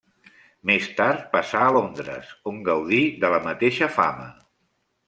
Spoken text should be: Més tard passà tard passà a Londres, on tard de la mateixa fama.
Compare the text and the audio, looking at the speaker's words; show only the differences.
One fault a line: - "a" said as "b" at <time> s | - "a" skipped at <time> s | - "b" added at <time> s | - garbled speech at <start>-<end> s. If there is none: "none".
- "tard passà" skipped at 1.6 s
- "tard" said as "gaudí" at 2.7 s